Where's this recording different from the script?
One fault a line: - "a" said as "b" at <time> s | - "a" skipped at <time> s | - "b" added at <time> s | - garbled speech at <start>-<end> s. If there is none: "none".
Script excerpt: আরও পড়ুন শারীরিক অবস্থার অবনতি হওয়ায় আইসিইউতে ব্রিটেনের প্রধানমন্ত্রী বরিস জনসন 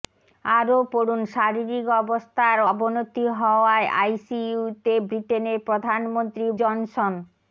- "বরিস" skipped at 6.4 s